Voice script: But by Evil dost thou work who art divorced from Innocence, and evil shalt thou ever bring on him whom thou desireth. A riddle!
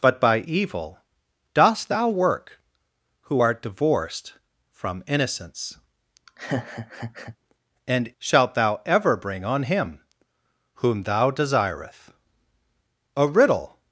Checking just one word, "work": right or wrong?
right